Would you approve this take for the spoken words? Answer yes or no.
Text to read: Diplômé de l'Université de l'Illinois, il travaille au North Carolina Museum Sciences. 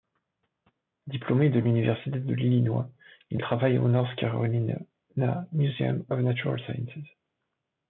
no